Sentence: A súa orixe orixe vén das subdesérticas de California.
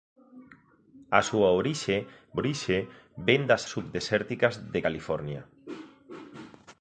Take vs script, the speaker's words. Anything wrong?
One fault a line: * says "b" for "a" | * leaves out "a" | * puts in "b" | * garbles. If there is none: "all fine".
all fine